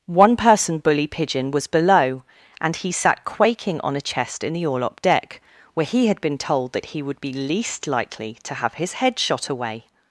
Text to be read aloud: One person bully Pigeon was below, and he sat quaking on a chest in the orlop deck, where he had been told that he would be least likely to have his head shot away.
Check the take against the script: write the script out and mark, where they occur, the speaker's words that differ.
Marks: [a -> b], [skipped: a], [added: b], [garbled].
One person bully Pigeon was below, and he sat quaking on a chest in the orlop deck, where he had been told that he would be least likely to have his head shot away.